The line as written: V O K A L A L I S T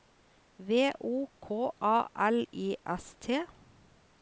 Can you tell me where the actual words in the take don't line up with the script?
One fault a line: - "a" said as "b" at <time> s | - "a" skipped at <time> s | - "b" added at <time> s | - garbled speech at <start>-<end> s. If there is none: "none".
- "A L" skipped at 2.5 s